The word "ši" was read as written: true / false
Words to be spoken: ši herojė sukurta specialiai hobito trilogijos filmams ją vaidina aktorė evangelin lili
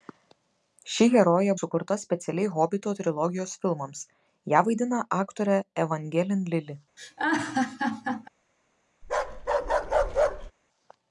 true